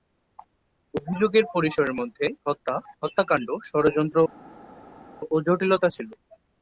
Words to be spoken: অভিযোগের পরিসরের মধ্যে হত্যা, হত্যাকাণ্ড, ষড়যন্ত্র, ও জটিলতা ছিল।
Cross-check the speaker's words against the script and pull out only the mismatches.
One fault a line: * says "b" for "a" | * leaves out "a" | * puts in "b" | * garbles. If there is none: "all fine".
all fine